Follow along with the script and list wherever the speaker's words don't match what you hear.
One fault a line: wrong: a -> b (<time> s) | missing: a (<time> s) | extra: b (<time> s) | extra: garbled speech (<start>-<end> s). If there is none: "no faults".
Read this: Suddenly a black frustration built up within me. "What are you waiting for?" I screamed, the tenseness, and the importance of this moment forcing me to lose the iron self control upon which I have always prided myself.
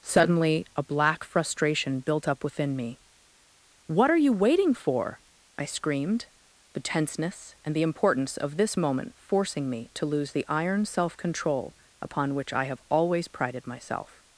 no faults